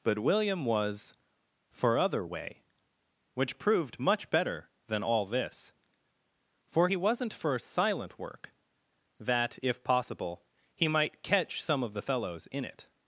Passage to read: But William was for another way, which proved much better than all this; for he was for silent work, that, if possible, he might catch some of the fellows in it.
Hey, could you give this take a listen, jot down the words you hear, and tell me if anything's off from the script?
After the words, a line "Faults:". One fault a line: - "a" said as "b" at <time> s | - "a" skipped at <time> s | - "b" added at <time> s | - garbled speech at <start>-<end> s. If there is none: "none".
But William was for other way, which proved much better than all this; for he wasn't for silent work, that, if possible, he might catch some of the fellows in it.
Faults:
- "another" said as "other" at 2.0 s
- "was" said as "wasn't" at 7.0 s